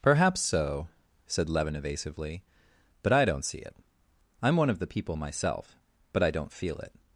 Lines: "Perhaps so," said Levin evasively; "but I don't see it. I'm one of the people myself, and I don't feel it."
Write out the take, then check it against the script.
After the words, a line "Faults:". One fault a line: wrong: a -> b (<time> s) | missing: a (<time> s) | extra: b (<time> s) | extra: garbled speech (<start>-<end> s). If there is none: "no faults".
"Perhaps so," said Levin evasively; "but I don't see it. I'm one of the people myself, but I don't feel it."
Faults:
wrong: and -> but (6.1 s)